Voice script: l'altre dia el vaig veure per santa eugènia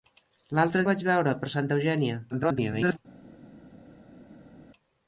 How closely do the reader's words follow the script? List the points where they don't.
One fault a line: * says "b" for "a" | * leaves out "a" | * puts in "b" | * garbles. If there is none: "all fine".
* leaves out "dia"
* garbles